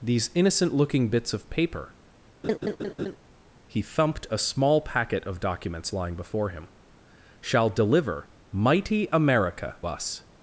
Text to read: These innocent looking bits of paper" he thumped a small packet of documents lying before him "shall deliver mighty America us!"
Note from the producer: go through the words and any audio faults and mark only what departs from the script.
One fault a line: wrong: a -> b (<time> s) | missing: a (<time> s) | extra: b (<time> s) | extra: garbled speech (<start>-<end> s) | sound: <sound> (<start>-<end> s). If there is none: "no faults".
sound: laugh (2.4-3.2 s)